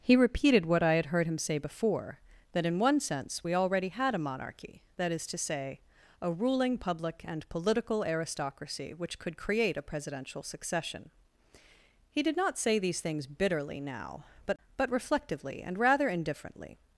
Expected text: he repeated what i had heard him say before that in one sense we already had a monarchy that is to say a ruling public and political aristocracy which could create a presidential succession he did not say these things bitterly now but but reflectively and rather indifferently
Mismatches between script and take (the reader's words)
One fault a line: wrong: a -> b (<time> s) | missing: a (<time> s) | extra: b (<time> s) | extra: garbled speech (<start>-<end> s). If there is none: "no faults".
no faults